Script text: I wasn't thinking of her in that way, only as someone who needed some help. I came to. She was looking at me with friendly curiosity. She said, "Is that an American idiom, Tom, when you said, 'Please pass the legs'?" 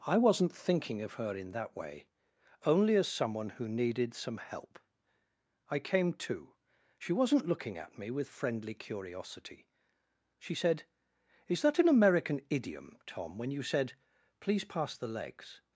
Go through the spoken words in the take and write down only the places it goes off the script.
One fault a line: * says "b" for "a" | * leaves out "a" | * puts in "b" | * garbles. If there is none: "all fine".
* says "wasn't" for "was"